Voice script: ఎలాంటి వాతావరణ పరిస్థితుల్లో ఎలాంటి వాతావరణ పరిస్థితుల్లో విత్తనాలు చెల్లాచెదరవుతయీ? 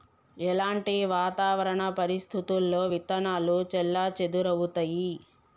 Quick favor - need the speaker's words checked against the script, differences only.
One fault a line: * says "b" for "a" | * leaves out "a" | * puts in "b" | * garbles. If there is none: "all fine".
* leaves out "ఎలాంటి వాతావరణ పరిస్థితుల్లో"